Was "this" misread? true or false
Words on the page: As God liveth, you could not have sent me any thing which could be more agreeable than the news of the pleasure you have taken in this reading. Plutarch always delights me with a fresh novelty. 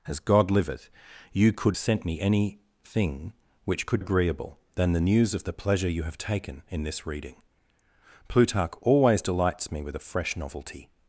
false